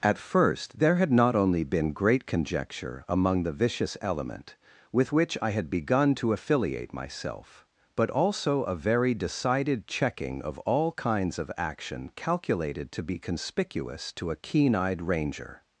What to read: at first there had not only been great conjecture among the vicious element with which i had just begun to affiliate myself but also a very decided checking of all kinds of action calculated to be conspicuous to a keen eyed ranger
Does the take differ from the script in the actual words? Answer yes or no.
yes